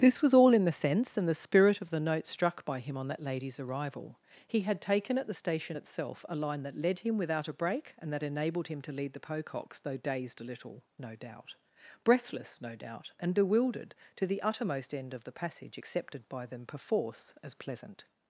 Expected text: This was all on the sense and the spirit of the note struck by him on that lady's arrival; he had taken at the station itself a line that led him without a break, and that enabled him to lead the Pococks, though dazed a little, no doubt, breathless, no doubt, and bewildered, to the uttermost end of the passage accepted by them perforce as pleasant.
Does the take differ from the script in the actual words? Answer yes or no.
yes